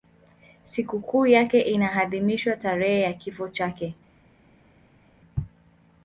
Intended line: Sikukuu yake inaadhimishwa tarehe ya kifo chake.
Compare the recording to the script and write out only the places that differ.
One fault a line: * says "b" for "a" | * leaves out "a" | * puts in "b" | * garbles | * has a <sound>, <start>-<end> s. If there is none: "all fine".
all fine